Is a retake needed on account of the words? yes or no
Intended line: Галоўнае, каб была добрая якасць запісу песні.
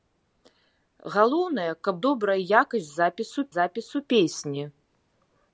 yes